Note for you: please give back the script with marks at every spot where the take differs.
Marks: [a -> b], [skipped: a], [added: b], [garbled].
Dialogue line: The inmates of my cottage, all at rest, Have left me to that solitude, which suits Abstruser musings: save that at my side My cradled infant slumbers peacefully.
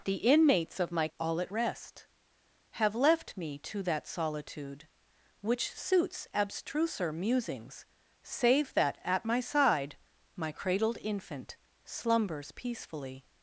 The inmates of my [skipped: cottage,] all at rest, Have left me to that solitude, which suits Abstruser musings: save that at my side My cradled infant slumbers peacefully.